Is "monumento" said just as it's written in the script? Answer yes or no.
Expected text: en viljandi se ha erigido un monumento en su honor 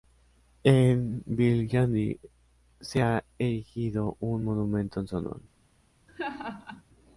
yes